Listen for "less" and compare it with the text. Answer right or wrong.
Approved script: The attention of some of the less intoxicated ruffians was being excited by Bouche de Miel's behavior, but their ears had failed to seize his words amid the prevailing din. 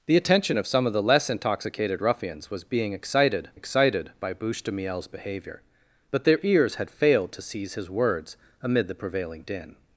right